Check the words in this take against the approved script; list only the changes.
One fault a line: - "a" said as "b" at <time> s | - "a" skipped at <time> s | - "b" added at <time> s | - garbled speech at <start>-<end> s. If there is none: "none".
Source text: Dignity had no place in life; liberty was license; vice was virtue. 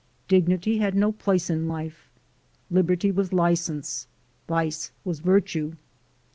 none